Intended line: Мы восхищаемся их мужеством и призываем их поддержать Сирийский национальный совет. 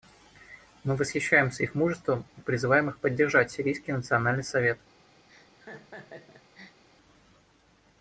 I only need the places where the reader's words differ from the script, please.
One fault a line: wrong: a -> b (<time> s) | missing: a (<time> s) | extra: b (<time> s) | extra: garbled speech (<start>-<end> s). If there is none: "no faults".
no faults